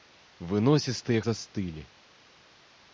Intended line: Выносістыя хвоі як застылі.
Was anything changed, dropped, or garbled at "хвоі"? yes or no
yes